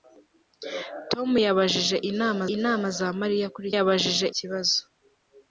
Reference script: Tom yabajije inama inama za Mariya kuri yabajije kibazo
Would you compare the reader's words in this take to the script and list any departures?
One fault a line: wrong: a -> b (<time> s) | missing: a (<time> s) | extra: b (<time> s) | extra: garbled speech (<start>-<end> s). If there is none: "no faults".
no faults